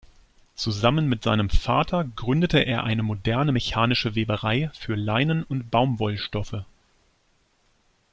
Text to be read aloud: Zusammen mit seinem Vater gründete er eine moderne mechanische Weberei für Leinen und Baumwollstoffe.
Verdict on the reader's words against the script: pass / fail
pass